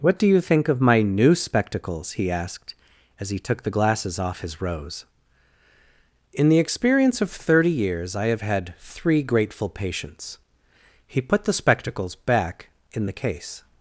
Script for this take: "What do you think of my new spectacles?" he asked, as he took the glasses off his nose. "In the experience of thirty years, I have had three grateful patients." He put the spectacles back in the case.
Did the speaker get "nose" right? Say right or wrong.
wrong